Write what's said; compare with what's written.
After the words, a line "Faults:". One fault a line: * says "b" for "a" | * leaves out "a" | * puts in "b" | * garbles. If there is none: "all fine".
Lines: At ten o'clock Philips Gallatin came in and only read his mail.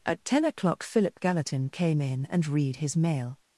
At ten o'clock Philip Gallatin came in and read his mail.
Faults:
* says "Philip" for "Philips"
* leaves out "only"